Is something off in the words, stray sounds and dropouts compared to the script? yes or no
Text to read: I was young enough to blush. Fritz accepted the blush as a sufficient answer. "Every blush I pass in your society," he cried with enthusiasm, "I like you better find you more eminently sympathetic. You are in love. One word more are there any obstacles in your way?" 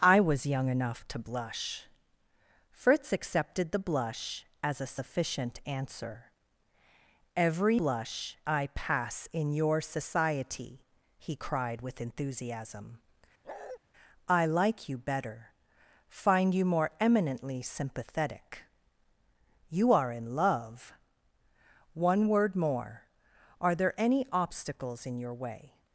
yes